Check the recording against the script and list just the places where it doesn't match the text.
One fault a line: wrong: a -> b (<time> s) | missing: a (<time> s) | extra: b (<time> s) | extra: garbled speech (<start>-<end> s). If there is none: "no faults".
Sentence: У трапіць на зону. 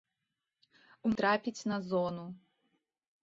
no faults